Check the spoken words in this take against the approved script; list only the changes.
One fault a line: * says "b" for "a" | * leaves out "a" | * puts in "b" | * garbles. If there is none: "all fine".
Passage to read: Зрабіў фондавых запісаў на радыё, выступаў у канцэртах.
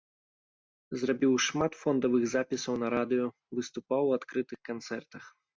* puts in "шмат"
* puts in "адкрытых"